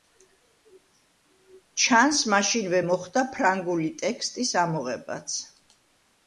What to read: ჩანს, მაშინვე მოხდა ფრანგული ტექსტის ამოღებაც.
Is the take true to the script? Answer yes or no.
yes